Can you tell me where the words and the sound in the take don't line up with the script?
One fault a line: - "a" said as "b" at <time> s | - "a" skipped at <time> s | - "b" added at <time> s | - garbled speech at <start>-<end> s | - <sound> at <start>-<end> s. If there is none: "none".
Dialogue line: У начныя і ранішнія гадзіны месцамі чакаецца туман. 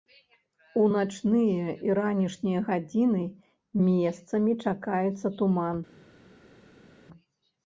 none